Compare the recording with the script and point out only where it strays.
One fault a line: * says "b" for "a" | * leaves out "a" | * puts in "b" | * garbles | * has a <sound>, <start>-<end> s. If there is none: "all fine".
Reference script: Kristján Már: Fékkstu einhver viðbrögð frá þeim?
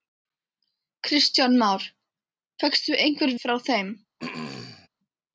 * leaves out "viðbrögð"
* has a throat clearing, 4.2-4.9 s